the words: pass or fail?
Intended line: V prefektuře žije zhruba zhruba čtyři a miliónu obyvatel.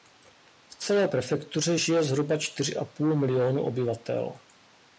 fail